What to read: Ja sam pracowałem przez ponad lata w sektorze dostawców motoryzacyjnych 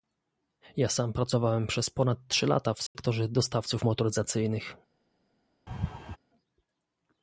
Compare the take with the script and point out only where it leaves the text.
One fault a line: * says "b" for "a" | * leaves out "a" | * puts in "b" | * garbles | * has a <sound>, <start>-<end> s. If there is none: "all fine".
* puts in "trzy"
* has a dropout, 2.9-3.0 s
* has a laugh, 5.7-6.2 s